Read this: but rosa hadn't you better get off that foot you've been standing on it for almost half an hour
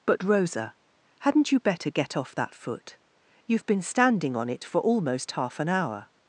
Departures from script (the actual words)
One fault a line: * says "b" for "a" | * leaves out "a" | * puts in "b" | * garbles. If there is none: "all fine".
all fine